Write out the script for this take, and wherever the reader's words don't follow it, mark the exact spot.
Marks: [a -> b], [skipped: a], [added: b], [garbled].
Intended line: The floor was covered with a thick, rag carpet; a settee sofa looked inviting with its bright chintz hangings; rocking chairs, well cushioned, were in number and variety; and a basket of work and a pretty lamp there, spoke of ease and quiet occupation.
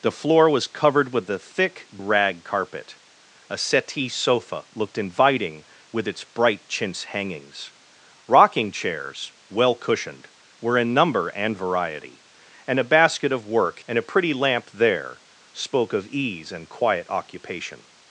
The floor was covered with a thick, rag carpet; a settee sofa looked inviting with its bright chintz hangings; rocking chairs, well cushioned, were in number and variety; and a basket of work and a pretty lamp there, spoke of ease and quiet occupation.